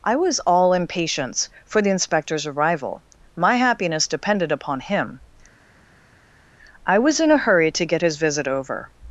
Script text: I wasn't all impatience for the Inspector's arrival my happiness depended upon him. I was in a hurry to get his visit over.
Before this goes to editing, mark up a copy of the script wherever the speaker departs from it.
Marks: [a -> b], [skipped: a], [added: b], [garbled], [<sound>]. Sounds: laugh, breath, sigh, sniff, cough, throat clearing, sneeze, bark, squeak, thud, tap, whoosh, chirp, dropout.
I [wasn't -> was] all impatience for the Inspector's arrival my happiness depended upon him. I was in a hurry to get his visit over.